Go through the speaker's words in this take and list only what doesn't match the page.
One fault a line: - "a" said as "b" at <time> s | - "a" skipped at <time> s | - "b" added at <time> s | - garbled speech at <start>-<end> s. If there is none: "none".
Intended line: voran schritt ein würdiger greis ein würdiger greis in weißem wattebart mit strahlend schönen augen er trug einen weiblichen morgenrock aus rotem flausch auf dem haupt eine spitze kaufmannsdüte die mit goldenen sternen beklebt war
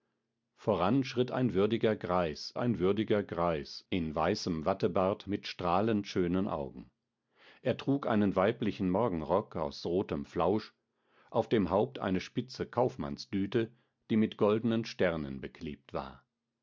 none